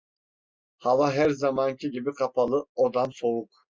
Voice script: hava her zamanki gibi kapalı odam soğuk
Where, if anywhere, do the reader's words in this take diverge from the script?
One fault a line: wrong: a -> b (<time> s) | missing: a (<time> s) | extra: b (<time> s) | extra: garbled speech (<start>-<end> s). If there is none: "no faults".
no faults